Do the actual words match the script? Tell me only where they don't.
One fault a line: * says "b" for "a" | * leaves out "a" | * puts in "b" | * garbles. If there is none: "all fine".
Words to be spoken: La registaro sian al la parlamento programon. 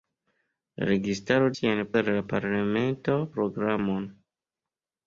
all fine